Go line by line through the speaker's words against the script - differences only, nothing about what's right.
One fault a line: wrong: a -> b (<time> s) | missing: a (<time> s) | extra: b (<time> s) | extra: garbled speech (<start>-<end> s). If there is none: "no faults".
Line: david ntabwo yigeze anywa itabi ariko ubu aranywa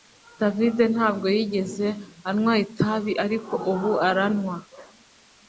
no faults